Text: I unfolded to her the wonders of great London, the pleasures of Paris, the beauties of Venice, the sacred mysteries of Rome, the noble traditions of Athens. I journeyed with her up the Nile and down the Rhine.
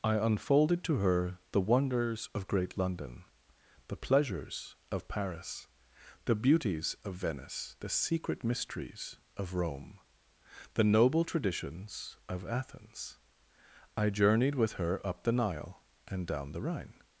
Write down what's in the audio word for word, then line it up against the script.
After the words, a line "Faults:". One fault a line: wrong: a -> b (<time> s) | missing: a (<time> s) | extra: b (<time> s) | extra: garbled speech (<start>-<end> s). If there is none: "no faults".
I unfolded to her the wonders of great London, the pleasures of Paris, the beauties of Venice, the secret mysteries of Rome, the noble traditions of Athens. I journeyed with her up the Nile and down the Rhine.
Faults:
wrong: sacred -> secret (7.9 s)